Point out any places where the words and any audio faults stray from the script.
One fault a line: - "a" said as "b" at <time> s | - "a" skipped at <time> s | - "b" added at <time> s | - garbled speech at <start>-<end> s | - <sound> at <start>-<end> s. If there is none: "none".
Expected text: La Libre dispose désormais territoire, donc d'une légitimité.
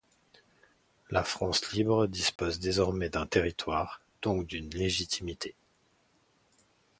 - "France" added at 1.2 s
- dropout at 2.4-2.4 s
- "d'un" added at 3.1 s